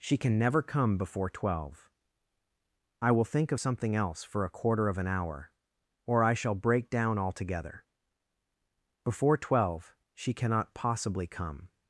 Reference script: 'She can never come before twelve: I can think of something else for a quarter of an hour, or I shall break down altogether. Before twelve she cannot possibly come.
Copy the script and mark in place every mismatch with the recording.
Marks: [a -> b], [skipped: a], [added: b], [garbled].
'She can never come before twelve: I [can -> will] think of something else for a quarter of an hour, or I shall break down altogether. Before twelve she cannot possibly come.